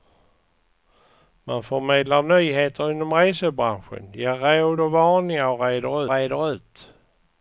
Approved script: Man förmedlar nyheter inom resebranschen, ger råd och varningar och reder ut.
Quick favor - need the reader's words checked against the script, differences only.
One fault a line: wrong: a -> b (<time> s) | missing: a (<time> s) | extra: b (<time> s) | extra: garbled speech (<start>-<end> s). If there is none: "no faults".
extra: reder (6.1 s)